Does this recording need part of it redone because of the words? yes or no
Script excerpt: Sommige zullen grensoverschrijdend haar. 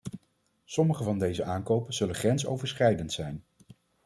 yes